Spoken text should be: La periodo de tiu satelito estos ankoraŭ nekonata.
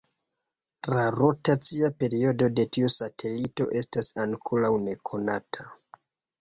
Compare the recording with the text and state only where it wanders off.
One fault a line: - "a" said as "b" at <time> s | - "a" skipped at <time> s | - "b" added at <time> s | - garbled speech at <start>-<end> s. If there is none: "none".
- "rotacia" added at 1.1 s
- "estos" said as "estas" at 3.8 s